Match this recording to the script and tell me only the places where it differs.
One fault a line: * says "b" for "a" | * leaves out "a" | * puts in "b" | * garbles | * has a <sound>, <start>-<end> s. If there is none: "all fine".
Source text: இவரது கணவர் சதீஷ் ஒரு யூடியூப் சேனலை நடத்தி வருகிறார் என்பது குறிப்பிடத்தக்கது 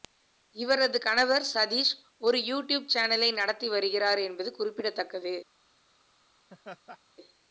* has a laugh, 6.5-7.0 s